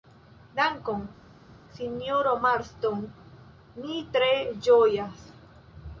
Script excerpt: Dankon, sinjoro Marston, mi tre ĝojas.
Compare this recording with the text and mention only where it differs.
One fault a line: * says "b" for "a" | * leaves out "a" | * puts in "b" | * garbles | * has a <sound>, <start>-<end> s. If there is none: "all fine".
all fine